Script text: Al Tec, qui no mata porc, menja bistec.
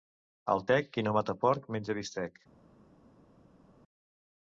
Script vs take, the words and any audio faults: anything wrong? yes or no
no